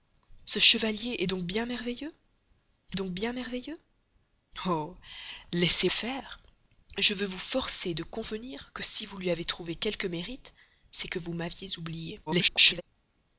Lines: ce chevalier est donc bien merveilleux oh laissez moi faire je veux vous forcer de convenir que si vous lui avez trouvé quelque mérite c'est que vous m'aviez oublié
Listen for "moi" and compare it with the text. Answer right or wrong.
wrong